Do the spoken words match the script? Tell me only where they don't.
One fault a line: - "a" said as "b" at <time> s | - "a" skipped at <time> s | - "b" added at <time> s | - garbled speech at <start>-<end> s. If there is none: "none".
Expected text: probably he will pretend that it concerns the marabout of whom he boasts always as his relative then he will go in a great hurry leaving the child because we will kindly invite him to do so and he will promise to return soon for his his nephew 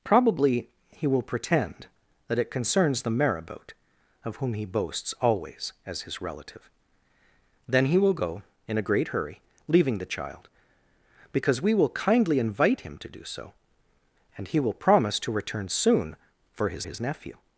none